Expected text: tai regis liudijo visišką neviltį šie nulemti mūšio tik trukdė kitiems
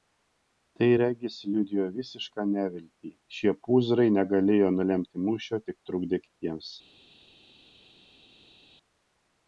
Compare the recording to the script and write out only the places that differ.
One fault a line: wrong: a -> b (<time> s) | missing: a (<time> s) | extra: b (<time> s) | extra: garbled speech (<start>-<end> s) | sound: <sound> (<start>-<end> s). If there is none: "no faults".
extra: pūzrai negalėjo (3.7 s)